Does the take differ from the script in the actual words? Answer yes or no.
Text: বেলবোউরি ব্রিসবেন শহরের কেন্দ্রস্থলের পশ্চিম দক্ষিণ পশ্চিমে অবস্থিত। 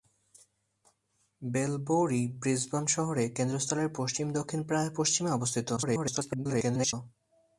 yes